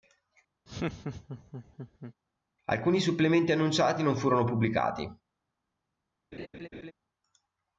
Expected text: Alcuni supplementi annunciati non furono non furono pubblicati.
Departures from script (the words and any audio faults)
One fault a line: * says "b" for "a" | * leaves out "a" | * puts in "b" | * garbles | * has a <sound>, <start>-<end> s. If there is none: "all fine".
* has a laugh, 0.7-2.1 s
* leaves out "non furono"
* has a laugh, 6.3-6.9 s